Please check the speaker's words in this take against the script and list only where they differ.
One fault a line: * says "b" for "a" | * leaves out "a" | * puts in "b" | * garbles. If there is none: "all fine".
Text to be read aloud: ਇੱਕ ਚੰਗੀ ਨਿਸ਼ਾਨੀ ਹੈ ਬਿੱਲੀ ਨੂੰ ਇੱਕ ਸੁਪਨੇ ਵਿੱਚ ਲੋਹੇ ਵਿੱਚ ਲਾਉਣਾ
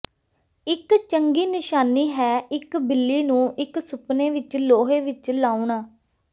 * puts in "ਇੱਕ"